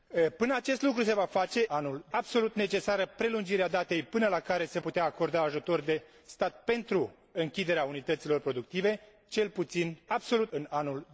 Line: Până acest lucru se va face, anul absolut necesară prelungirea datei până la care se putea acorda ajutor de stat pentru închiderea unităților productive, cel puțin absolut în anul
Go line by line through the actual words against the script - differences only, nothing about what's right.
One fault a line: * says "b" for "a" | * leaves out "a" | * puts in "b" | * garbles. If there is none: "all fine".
all fine